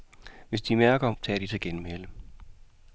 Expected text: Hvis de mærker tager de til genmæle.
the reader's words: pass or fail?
pass